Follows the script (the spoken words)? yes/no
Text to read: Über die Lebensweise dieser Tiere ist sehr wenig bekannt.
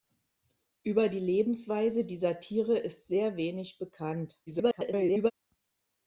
no